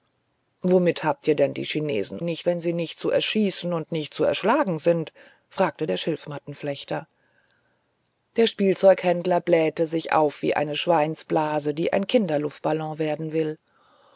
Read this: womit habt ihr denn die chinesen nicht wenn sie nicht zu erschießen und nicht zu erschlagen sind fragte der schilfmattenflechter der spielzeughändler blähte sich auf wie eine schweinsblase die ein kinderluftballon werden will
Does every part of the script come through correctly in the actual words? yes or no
yes